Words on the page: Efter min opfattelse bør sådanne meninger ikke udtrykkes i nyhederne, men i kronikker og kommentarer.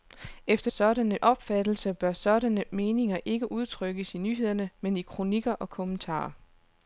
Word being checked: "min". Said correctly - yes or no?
no